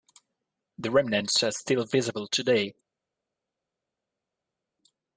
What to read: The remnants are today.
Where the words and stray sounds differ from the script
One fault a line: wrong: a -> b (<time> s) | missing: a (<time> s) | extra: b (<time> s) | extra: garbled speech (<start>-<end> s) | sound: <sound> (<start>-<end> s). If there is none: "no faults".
extra: still visible (1.5 s)